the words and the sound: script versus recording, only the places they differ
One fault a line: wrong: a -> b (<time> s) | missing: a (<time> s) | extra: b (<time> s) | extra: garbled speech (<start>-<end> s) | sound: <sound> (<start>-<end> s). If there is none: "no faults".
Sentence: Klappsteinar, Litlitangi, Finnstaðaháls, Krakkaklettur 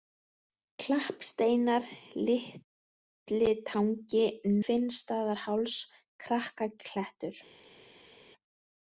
no faults